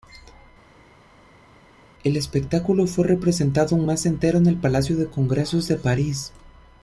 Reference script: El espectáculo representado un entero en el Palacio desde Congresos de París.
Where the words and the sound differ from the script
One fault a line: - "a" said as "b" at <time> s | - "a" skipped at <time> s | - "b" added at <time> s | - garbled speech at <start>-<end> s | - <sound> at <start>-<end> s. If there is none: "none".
- "fue" added at 2.9 s
- "mes" added at 3.9 s
- "desde" said as "de" at 5.0 s